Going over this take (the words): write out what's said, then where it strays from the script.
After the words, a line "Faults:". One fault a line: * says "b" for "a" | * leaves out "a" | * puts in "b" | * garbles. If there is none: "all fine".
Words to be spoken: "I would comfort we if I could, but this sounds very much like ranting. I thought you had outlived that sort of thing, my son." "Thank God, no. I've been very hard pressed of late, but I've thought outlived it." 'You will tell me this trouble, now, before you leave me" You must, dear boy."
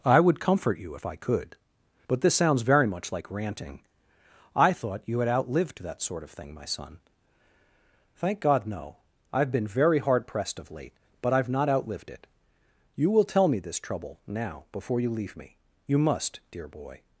"I would comfort you if I could, but this sounds very much like ranting. I thought you had outlived that sort of thing, my son." "Thank God, no. I've been very hard pressed of late, but I've not outlived it." 'You will tell me this trouble, now, before you leave me" You must, dear boy."
Faults:
* says "you" for "we"
* says "not" for "thought"